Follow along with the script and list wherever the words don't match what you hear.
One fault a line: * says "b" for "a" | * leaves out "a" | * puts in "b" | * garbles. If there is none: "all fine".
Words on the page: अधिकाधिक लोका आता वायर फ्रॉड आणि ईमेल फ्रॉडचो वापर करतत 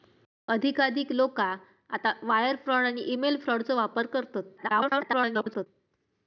* garbles